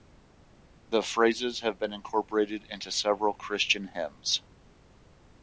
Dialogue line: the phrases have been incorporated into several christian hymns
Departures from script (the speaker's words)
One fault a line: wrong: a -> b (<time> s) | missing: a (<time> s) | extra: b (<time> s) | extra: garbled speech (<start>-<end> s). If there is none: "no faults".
no faults